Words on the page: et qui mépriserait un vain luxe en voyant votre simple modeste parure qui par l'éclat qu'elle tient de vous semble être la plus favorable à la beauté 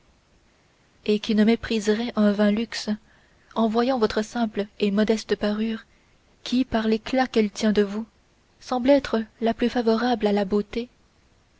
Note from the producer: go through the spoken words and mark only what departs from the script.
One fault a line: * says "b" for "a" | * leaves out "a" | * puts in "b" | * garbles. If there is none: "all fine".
* puts in "ne"
* puts in "et"